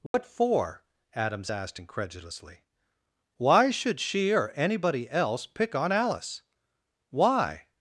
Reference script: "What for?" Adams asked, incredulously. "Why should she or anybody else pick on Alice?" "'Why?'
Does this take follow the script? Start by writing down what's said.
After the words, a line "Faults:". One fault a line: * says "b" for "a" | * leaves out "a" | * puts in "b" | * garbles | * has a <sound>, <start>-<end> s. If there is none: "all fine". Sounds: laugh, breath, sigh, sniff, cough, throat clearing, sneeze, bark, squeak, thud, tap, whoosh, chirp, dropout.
"What for?" Adams asked, incredulously. "Why should she or anybody else pick on Alice?" "'Why?'
Faults:
* has a dropout, 0.1-0.1 s